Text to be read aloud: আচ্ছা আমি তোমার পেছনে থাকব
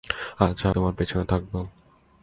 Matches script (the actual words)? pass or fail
fail